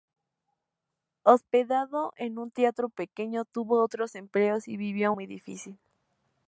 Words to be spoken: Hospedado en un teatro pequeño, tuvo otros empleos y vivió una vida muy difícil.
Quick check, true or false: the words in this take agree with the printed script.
false